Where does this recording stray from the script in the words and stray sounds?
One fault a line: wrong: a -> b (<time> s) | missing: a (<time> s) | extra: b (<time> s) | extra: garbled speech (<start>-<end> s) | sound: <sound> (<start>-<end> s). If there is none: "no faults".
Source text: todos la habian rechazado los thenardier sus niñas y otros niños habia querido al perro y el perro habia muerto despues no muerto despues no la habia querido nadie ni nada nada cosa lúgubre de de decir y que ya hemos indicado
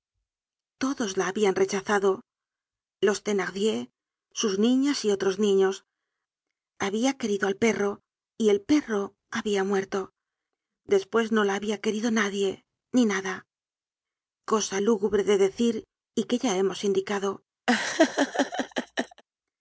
missing: muerto despues no (11.4 s)
missing: nada (13.5 s)
missing: de (15.4 s)
sound: laugh (17.7-19.2 s)